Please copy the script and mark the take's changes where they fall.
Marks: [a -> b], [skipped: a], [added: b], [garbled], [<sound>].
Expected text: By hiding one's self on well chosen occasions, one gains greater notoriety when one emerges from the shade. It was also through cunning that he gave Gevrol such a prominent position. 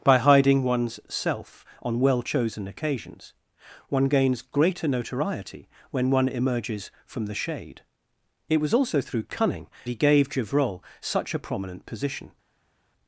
By hiding one's self on well chosen occasions, one gains greater notoriety when one emerges from the shade. It was also through cunning [skipped: that] he gave Gevrol such a prominent position.